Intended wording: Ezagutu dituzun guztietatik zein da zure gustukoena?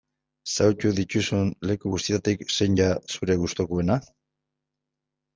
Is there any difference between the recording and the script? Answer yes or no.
yes